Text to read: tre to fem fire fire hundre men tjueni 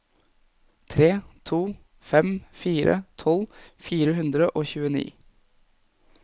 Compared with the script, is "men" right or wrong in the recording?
wrong